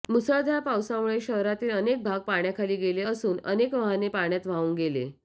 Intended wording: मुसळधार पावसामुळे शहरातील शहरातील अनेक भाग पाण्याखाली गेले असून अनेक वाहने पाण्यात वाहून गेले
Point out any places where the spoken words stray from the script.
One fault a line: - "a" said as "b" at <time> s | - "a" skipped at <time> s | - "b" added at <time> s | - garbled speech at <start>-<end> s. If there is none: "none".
- "शहरातील" skipped at 1.7 s